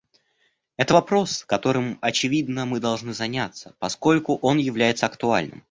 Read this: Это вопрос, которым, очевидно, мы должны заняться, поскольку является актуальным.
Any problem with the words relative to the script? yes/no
yes